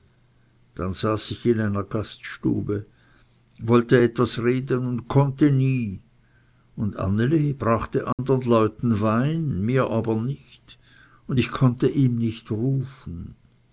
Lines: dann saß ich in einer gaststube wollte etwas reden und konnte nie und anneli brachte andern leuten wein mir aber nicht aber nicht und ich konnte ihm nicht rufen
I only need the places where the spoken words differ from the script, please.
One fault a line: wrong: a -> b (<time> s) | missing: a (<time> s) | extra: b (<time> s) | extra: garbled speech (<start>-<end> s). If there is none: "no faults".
missing: aber nicht (10.8 s)